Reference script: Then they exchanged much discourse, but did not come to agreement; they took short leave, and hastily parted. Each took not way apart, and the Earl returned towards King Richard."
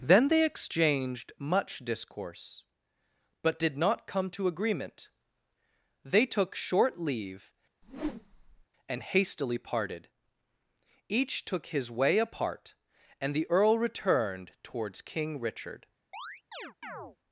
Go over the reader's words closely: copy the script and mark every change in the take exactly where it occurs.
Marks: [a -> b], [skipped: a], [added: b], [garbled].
Then they exchanged much discourse, but did not come to agreement; they took short leave, and hastily parted. Each took [not -> his] way apart, and the Earl returned towards King Richard."